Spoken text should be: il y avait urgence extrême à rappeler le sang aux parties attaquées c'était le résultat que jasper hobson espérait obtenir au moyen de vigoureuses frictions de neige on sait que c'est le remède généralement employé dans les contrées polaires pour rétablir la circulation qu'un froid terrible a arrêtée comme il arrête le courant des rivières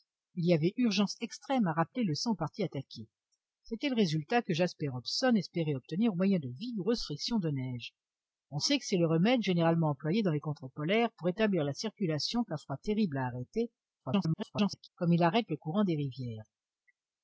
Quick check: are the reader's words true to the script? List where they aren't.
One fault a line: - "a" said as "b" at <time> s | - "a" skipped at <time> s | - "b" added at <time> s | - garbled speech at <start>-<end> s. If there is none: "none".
- garbled speech at 14.0-14.9 s